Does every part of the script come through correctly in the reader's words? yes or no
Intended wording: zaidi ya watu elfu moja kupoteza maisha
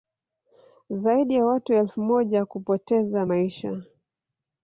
yes